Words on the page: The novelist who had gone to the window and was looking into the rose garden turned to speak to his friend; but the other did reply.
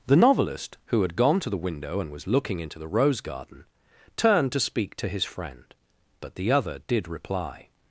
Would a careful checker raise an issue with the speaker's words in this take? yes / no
no